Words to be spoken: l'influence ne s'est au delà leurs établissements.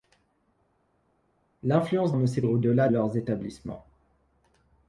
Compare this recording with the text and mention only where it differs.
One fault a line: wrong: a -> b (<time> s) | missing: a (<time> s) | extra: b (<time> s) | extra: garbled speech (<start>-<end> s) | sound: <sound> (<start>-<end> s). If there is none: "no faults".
no faults